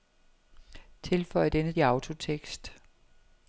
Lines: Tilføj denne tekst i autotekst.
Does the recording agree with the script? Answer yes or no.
no